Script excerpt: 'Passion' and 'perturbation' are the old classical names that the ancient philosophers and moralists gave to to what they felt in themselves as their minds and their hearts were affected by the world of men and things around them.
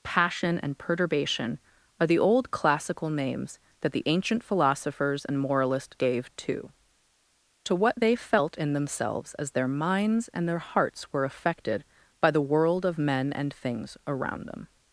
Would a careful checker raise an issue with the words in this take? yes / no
no